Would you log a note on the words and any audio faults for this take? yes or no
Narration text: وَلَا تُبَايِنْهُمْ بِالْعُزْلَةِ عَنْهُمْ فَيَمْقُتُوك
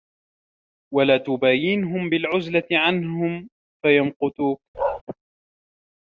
yes